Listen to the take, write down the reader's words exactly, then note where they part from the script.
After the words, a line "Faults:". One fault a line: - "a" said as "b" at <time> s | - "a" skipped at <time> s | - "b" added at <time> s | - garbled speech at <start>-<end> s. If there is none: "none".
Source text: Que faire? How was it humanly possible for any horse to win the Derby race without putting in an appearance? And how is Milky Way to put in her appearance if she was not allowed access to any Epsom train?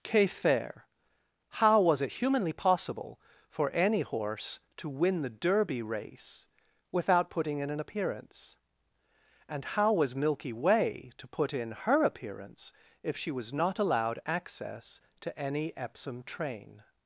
Que faire? How was it humanly possible for any horse to win the Derby race without putting in an appearance? And how was Milky Way to put in her appearance if she was not allowed access to any Epsom train?
Faults:
- "is" said as "was" at 9.9 s